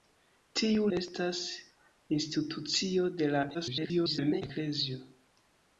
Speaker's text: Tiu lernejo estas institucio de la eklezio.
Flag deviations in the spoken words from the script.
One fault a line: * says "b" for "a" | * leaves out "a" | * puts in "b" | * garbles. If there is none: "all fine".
* leaves out "lernejo"
* garbles